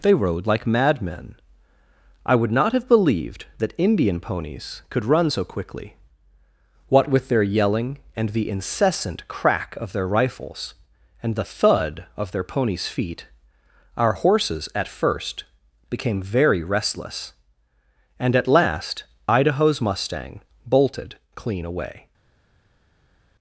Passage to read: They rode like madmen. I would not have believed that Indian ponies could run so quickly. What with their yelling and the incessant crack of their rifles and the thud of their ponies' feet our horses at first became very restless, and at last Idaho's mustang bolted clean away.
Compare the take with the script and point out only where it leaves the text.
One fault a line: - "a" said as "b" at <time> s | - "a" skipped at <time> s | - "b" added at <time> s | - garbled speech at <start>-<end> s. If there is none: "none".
none